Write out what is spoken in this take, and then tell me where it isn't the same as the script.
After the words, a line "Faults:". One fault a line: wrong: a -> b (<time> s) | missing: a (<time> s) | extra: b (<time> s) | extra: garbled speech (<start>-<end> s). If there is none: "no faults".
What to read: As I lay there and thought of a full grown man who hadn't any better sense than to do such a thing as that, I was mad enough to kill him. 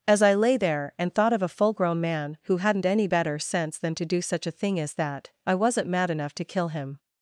As I lay there and thought of a full grown man who hadn't any better sense than to do such a thing as that, I wasn't mad enough to kill him.
Faults:
wrong: was -> wasn't (5.5 s)